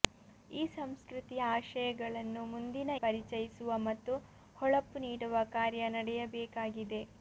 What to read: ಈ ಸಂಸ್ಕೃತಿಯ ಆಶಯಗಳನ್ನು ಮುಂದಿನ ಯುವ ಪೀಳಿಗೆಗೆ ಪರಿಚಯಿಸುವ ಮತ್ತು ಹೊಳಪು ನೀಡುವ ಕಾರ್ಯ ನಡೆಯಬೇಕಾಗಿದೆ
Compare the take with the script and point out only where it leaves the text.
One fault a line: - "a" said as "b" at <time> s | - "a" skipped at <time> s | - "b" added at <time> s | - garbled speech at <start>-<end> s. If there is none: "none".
- "ಯುವ ಪೀಳಿಗೆಗೆ" skipped at 2.9 s